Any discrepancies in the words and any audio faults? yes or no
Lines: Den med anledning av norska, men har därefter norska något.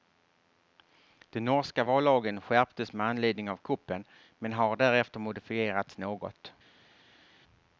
yes